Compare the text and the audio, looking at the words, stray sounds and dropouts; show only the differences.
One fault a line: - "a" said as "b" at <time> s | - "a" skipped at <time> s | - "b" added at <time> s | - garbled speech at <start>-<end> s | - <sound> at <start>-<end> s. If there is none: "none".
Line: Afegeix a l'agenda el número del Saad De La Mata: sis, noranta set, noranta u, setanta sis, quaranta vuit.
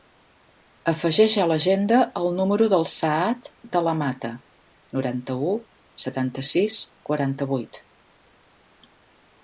- "sis noranta set" skipped at 4.3 s